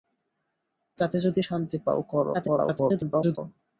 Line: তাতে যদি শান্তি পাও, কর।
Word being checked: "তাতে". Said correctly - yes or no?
yes